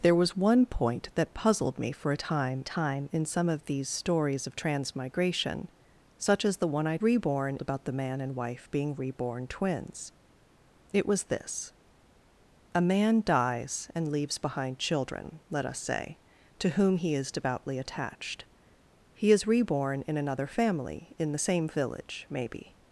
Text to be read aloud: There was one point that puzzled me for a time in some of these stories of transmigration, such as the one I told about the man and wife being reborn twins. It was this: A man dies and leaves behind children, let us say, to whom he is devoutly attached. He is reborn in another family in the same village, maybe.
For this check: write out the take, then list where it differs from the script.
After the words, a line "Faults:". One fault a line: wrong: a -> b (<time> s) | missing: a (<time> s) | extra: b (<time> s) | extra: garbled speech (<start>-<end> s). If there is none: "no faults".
There was one point that puzzled me for a time time in some of these stories of transmigration, such as the one I reborn about the man and wife being reborn twins. It was this: A man dies and leaves behind children, let us say, to whom he is devoutly attached. He is reborn in another family in the same village, maybe.
Faults:
extra: time (2.6 s)
wrong: told -> reborn (7.0 s)